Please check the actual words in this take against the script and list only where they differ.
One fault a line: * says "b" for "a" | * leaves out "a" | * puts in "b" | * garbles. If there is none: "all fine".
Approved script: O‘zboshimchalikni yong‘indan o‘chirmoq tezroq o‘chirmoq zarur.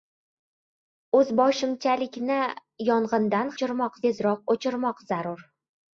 all fine